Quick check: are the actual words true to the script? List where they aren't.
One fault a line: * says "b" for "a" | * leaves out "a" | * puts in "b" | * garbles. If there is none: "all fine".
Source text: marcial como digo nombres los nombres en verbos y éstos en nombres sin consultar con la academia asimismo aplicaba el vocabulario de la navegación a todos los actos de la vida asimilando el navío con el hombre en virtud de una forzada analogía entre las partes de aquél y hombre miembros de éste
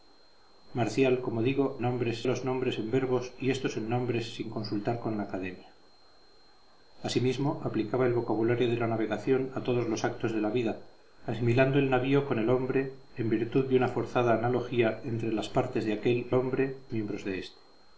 all fine